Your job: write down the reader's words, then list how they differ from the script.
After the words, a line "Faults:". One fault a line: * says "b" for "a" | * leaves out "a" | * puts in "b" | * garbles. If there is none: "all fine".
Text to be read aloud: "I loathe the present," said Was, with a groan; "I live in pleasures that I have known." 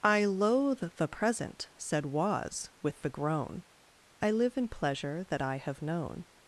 "I loathe the present," said Was, with the groan; "I live in pleasure that I have known."
Faults:
* says "the" for "a"
* says "pleasure" for "pleasures"